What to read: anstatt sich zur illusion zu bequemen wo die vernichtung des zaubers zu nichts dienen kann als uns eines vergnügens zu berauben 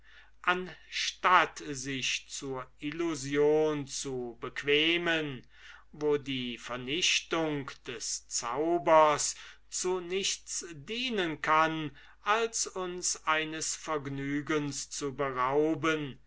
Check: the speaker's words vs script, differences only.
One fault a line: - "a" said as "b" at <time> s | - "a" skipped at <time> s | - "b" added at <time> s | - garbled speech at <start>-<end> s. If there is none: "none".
none